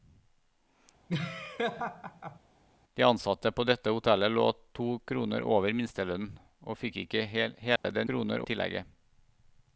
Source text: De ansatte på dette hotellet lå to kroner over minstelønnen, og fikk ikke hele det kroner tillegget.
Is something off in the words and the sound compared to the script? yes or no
yes